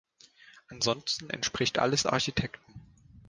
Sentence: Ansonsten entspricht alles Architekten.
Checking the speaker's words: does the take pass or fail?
pass